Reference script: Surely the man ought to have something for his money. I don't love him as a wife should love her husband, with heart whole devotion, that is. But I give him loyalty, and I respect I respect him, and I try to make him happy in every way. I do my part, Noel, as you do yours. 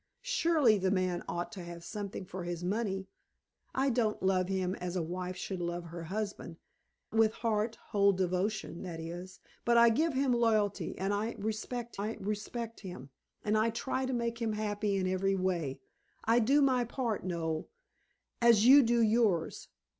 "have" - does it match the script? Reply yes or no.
yes